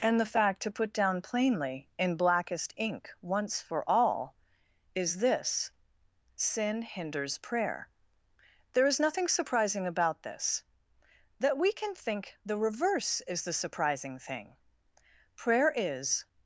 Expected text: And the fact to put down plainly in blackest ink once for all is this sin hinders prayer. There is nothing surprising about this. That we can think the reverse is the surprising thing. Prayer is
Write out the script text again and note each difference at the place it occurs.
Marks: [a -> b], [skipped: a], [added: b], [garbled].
And the fact to put down plainly in blackest ink once for all is this sin hinders prayer. There is nothing surprising about this. That we can think the reverse is the surprising thing. Prayer is